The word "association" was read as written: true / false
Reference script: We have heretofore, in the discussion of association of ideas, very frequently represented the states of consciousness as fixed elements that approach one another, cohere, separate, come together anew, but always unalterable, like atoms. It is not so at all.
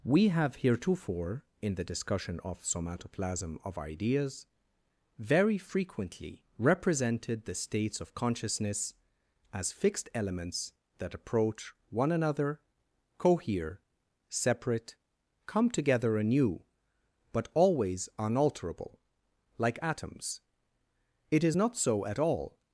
false